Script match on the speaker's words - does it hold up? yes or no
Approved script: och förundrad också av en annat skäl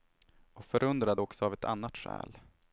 no